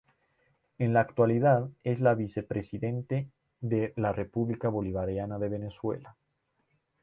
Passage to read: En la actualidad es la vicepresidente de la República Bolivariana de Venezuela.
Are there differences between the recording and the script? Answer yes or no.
no